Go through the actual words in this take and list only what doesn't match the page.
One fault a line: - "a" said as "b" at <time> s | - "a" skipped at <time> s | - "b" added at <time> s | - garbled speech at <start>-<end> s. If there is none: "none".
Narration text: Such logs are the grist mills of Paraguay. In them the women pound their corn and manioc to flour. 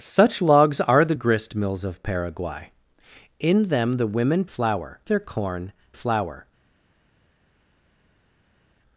- "pound" said as "flour" at 4.5 s
- "and manioc to" skipped at 5.7 s